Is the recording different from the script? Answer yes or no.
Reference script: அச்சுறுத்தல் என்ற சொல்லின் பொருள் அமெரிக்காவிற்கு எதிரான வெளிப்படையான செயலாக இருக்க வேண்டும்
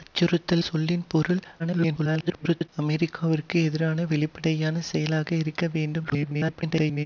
yes